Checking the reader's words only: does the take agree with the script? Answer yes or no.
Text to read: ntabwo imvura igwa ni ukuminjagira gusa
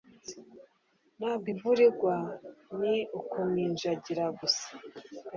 yes